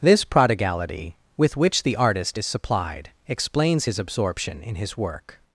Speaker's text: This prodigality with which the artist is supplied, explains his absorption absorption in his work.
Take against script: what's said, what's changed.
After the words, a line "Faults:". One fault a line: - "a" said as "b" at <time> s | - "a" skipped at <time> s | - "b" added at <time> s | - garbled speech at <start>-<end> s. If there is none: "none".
This prodigality with which the artist is supplied, explains his absorption in his work.
Faults:
- "absorption" skipped at 4.6 s